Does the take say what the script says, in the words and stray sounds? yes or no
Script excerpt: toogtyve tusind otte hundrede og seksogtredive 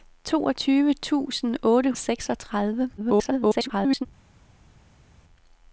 no